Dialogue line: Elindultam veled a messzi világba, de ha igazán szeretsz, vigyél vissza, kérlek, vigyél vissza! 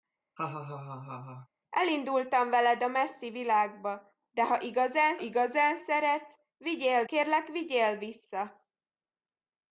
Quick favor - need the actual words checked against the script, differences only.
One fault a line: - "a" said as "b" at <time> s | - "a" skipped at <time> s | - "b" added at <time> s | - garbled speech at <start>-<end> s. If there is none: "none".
- "igazán" added at 5.2 s
- "vissza" skipped at 7.0 s